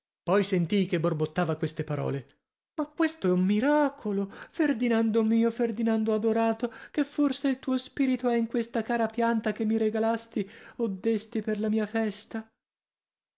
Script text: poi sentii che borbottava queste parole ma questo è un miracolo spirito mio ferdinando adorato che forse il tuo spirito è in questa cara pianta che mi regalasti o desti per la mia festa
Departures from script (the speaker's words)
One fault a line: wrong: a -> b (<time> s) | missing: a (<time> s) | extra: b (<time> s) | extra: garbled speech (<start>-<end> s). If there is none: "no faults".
wrong: spirito -> ferdinando (4.5 s)